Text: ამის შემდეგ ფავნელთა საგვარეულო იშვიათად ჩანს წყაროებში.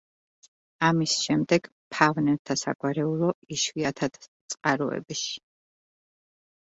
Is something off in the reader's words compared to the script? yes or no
yes